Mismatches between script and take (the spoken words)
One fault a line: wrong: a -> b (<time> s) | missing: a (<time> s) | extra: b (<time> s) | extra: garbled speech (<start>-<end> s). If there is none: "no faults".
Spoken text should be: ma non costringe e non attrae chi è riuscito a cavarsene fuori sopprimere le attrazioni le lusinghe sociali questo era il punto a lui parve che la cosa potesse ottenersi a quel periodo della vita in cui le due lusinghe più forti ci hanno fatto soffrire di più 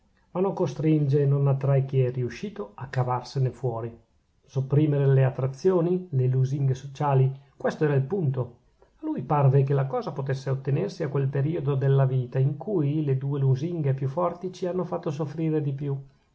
no faults